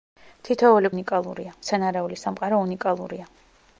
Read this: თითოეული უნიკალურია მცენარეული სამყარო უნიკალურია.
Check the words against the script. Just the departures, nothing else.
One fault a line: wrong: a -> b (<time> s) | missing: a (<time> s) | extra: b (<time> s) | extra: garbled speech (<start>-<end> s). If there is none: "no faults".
no faults